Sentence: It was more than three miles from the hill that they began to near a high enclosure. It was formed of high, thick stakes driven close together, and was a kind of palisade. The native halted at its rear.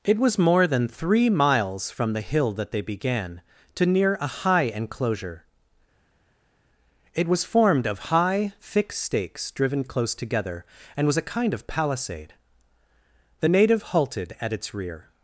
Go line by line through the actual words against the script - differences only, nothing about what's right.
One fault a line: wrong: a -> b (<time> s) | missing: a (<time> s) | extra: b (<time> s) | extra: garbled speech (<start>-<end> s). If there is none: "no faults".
no faults